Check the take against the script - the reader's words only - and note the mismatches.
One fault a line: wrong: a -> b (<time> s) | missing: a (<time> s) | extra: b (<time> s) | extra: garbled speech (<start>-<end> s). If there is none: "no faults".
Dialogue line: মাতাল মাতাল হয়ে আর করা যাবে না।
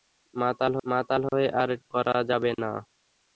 no faults